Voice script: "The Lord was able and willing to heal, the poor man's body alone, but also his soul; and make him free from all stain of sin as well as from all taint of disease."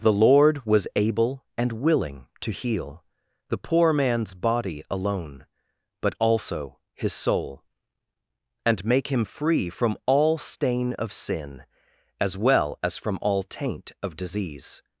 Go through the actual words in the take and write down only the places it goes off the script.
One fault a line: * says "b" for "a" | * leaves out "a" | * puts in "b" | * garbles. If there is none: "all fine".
all fine